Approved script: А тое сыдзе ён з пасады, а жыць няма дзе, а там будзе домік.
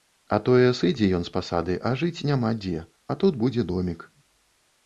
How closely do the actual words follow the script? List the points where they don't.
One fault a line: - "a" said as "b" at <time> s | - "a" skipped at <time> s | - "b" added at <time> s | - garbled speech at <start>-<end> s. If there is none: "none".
- "там" said as "тут" at 3.2 s